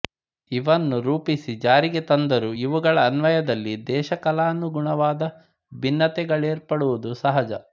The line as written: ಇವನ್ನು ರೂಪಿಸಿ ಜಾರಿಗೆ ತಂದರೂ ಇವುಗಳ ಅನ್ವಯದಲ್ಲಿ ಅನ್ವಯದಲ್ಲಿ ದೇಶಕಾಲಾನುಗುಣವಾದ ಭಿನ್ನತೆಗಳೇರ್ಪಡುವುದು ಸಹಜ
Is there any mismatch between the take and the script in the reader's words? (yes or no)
yes